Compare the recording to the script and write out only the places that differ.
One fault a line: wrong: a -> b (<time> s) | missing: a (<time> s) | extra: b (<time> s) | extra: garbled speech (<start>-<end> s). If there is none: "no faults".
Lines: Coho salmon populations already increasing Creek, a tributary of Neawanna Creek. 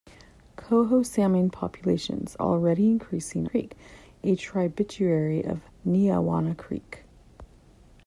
no faults